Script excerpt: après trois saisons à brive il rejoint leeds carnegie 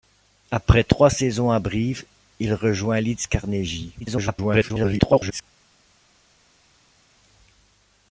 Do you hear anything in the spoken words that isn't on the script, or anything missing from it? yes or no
yes